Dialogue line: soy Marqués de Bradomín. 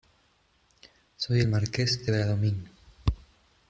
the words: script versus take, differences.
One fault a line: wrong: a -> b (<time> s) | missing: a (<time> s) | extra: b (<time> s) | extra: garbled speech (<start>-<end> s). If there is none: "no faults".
extra: el (1.4 s)